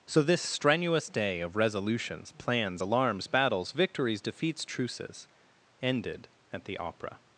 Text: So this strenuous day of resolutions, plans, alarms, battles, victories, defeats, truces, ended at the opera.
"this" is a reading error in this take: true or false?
false